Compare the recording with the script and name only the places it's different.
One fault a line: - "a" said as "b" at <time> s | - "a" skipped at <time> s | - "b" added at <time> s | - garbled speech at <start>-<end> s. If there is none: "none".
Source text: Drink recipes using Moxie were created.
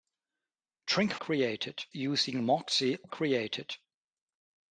- "recipes" said as "created" at 1.2 s
- "were" skipped at 3.0 s